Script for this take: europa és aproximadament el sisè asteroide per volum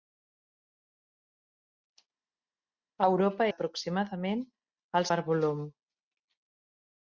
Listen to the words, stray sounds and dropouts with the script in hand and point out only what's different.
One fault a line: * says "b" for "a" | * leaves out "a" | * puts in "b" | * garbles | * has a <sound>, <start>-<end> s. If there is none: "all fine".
* leaves out "és"
* leaves out "sisè asteroide"